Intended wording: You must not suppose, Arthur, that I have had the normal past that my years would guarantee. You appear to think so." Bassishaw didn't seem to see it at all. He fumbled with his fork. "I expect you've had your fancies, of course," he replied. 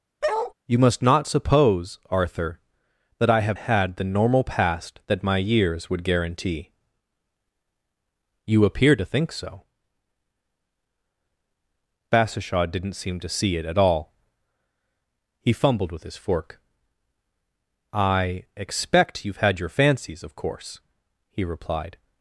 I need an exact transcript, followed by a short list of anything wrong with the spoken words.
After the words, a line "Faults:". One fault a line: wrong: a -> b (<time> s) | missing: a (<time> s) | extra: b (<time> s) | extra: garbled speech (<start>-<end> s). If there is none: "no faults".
You must not suppose, Arthur, that I have had the normal past that my years would guarantee. You appear to think so." Bassishaw didn't seem to see it at all. He fumbled with his fork. "I expect you've had your fancies, of course," he replied.
Faults:
no faults